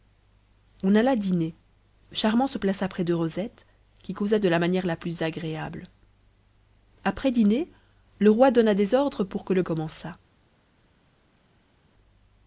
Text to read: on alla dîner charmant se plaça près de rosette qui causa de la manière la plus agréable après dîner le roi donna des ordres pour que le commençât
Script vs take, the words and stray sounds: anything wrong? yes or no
no